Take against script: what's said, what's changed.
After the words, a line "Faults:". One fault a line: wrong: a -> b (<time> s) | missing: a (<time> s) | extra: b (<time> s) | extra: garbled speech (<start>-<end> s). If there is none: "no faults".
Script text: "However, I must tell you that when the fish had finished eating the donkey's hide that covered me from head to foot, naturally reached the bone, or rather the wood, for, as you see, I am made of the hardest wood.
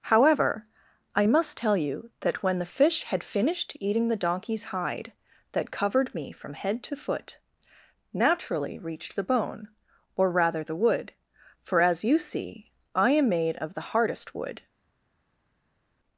"However, I must tell you that when the fish had finished eating the donkey's hide that covered me from head to foot, naturally reached the bone, or rather the wood, for, as you see, I am made of the hardest wood.
Faults:
no faults